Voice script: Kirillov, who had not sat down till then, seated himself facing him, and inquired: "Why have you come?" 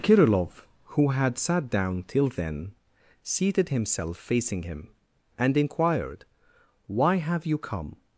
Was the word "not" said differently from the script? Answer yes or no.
yes